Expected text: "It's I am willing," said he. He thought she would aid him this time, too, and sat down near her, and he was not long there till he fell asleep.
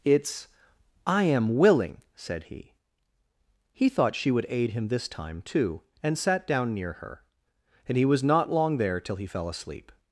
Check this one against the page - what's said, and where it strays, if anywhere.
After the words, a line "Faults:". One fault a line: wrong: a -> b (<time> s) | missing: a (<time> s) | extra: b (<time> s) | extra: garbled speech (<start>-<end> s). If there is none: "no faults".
"It's I am willing," said he. He thought she would aid him this time, too, and sat down near her, and he was not long there till he fell asleep.
Faults:
no faults